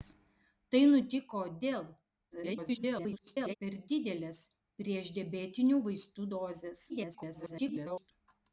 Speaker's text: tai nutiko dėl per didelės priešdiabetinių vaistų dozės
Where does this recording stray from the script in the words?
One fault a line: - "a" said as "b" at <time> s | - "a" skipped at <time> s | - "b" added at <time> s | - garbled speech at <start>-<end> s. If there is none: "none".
- garbled speech at 2.3-3.5 s
- garbled speech at 6.9-8.1 s